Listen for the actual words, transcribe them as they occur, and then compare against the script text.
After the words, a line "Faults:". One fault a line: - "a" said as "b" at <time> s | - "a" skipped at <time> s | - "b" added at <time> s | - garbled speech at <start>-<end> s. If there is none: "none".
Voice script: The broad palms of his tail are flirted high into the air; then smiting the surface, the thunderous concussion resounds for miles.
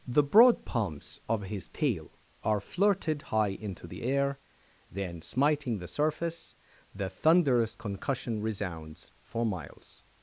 The broad palms of his tail are flirted high into the air; then smiting the surface, the thunderous concussion resounds for miles.
Faults:
none